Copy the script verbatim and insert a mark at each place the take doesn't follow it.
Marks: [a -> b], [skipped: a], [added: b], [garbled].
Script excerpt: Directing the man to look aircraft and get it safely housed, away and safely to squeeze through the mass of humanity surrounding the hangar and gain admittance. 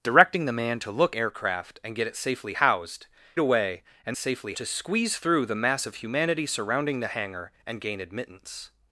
Directing the man to look aircraft and get it safely housed, away and safely to squeeze through the mass of humanity surrounding the hangar and gain admittance.